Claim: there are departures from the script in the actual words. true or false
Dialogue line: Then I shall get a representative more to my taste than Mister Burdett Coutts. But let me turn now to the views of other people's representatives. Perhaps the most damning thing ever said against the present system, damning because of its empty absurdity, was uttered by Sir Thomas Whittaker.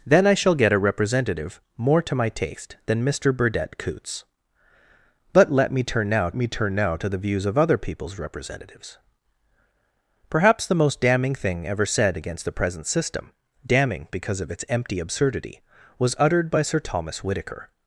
true